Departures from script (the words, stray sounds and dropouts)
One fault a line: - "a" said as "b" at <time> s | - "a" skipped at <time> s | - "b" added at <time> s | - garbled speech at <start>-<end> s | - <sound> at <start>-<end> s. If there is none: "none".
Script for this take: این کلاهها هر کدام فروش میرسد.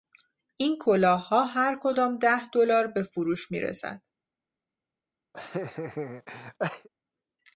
- "ده دلار به" added at 2.2 s
- laugh at 5.3-6.9 s